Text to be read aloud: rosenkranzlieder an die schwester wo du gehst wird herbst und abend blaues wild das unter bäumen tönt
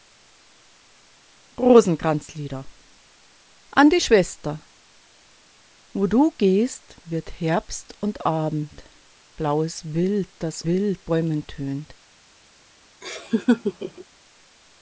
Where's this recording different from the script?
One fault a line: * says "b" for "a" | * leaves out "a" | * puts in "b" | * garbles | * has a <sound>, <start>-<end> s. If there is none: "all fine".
* says "wild" for "unter"
* has a laugh, 13.0-14.0 s